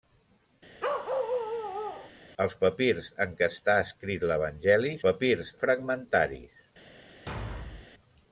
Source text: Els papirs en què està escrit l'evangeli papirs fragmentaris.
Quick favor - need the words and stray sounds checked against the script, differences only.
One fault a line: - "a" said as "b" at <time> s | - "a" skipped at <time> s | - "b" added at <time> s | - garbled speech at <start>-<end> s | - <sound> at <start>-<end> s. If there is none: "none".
- bark at 0.8-2.1 s
- thud at 7.3-7.9 s